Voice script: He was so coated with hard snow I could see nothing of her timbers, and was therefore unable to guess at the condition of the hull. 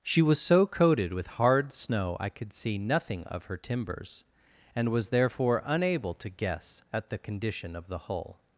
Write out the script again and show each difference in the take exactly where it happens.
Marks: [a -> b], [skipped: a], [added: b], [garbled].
[He -> She] was so coated with hard snow I could see nothing of her timbers, and was therefore unable to guess at the condition of the hull.